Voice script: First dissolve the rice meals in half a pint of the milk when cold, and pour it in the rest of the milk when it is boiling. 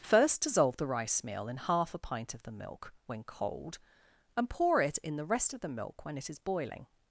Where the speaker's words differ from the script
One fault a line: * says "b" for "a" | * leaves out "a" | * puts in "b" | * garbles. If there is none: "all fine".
* says "meal" for "meals"